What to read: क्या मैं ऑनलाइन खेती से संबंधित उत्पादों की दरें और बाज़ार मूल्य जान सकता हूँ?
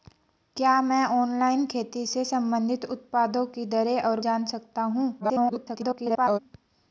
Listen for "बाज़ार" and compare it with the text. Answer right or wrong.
wrong